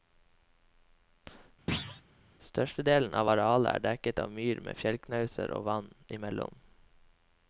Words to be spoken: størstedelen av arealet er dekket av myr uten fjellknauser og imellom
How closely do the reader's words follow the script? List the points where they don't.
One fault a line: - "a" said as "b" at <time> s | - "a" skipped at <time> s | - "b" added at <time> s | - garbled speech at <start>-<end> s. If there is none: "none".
- "uten" said as "med" at 4.7 s
- "vann" added at 5.7 s